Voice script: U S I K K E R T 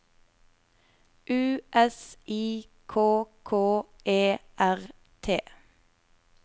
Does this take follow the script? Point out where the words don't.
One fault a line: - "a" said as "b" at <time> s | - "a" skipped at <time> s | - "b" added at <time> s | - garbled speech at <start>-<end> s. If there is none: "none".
none